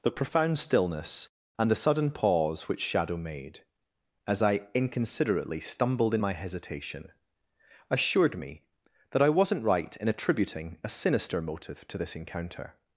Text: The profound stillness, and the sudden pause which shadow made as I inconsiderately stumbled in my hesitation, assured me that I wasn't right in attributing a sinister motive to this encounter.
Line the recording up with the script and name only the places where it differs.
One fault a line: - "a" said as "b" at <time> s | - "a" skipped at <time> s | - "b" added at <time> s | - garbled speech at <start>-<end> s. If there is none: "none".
none